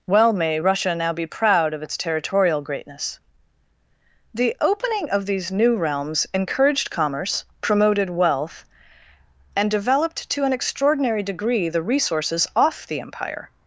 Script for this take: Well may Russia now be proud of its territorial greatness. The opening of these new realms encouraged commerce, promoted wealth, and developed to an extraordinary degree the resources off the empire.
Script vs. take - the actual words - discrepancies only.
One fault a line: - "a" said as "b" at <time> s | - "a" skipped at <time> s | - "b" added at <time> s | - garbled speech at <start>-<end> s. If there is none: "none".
none